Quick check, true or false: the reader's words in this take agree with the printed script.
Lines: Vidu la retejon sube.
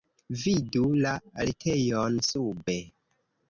true